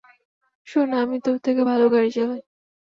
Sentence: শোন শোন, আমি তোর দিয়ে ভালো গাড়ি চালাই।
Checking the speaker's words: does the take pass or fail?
fail